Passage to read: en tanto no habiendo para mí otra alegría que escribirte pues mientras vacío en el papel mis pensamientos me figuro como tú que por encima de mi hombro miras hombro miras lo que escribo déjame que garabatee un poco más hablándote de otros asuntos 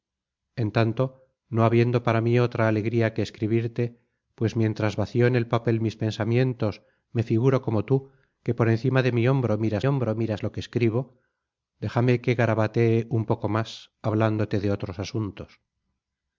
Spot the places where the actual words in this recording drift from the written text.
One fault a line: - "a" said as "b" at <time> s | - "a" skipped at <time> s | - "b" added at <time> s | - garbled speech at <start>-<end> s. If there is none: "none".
none